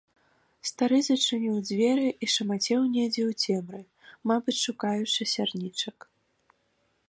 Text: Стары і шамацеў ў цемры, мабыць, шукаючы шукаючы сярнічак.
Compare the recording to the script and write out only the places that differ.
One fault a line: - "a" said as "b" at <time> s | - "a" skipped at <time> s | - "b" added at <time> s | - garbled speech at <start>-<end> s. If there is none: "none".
- "зачыніў дзверы" added at 1.1 s
- "недзе" added at 2.9 s
- "шукаючы" skipped at 5.2 s